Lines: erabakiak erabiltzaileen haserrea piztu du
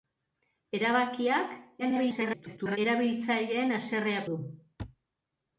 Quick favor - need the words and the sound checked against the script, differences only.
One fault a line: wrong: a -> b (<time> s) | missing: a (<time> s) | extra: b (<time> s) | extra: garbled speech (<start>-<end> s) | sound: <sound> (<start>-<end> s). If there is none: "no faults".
extra: garbled speech (1.8-2.8 s)
missing: piztu (4.2 s)